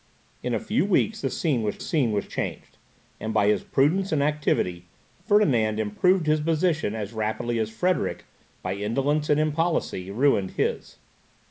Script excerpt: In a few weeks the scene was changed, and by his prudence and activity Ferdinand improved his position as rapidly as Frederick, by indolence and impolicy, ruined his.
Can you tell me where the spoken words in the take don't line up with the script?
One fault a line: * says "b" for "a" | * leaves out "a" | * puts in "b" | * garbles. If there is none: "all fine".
* puts in "scene was"